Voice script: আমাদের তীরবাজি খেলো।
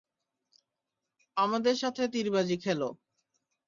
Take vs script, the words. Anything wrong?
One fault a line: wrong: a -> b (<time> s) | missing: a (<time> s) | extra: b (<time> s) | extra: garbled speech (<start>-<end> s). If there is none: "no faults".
extra: সাথে (1.7 s)